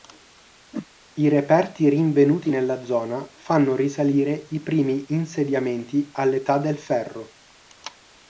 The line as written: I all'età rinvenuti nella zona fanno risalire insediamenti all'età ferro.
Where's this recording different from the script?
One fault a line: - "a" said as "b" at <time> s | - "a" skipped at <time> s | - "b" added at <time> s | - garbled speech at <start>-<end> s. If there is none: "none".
- "all'età" said as "reperti" at 1.3 s
- "i primi" added at 4.5 s
- "del" added at 6.6 s